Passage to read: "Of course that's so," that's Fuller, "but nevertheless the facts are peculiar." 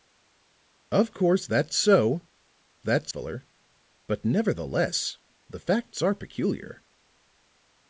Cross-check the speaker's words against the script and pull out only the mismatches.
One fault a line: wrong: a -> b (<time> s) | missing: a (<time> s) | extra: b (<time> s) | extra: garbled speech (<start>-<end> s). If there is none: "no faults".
no faults